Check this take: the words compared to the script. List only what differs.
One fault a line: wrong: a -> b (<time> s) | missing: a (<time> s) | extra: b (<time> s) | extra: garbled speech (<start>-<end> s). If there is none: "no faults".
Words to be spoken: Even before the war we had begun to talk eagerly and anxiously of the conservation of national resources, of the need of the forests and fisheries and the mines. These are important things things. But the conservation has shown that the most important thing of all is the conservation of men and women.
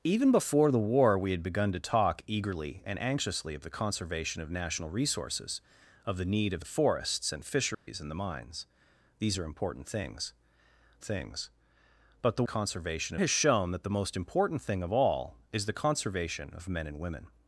no faults